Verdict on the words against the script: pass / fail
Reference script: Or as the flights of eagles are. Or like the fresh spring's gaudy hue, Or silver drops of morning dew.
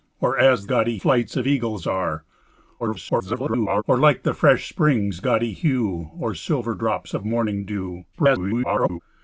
fail